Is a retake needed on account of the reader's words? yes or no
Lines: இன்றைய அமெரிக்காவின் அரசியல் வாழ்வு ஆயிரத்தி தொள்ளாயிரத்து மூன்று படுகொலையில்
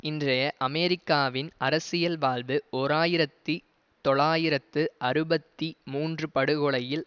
yes